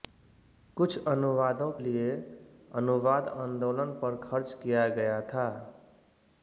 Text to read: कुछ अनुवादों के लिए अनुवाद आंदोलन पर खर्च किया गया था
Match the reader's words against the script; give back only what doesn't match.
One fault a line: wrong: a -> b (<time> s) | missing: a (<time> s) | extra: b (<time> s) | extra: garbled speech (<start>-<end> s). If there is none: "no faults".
missing: के (1.7 s)